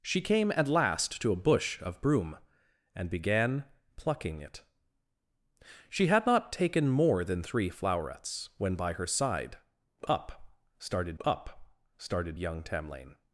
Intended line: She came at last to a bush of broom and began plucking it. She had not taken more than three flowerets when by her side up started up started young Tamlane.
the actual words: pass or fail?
pass